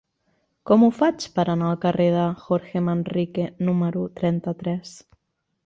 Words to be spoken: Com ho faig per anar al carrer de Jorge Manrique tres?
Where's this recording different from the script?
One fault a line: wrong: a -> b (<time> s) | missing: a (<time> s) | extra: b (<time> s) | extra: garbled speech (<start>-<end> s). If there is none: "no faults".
extra: número trenta (3.7 s)